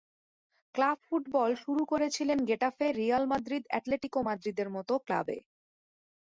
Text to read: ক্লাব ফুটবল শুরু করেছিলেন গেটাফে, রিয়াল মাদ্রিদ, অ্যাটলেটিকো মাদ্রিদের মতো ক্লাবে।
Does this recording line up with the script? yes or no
yes